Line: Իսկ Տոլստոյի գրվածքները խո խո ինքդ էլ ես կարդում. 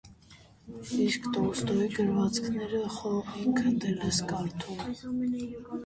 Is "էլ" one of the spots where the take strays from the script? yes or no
no